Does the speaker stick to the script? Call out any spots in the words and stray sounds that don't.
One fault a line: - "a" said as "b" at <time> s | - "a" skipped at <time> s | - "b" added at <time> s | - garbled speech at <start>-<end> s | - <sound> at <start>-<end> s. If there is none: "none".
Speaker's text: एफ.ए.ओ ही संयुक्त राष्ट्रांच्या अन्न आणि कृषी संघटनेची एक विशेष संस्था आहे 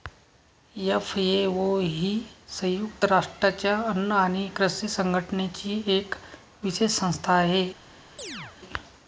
- chirp at 8.2-8.6 s